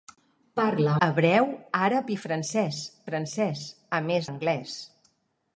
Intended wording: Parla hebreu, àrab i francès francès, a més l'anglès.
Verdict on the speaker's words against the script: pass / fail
pass